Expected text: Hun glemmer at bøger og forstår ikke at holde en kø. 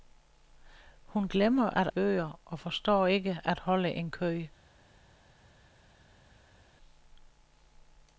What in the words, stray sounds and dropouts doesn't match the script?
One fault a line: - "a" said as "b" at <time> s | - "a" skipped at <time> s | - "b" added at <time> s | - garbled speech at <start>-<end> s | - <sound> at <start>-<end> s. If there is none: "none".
none